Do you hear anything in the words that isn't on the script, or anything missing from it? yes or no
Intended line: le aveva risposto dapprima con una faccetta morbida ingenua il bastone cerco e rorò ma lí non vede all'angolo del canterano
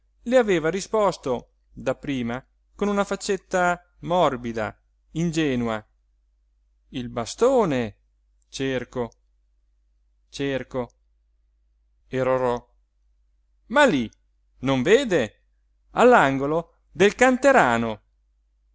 yes